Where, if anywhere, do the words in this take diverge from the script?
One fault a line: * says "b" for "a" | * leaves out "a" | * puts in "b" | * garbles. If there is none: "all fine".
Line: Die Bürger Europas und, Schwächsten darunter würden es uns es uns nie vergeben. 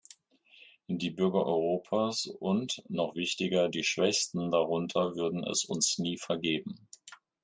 * puts in "noch wichtiger die"
* leaves out "es uns"